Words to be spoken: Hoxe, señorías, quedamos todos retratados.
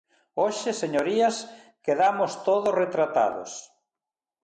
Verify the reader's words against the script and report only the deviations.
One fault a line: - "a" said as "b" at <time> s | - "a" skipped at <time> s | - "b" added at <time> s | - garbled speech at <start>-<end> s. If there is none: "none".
none